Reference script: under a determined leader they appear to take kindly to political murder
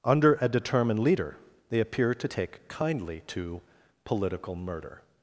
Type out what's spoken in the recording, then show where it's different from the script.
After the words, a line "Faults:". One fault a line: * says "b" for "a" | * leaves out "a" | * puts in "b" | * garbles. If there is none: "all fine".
under a determined leader they appear to take kindly to political murder
Faults:
all fine